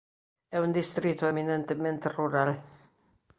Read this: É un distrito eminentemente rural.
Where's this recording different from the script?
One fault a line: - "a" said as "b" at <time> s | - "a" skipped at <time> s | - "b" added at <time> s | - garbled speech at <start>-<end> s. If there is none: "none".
none